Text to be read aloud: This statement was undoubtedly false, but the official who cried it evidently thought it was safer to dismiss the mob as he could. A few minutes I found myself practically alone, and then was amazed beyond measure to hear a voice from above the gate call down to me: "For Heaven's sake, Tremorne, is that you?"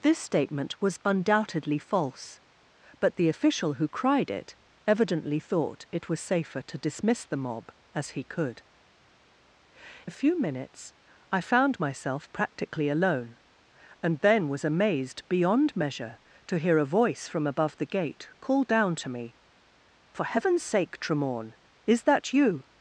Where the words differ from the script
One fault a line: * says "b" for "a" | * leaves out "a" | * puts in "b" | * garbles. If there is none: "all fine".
all fine